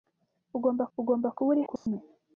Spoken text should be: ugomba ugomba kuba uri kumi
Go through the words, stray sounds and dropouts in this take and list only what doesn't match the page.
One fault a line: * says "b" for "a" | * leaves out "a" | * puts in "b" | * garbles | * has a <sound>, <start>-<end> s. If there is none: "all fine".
* has a dropout, 1.8-1.9 s